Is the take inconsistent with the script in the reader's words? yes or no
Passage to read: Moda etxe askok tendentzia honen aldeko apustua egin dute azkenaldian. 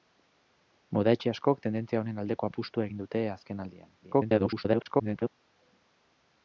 yes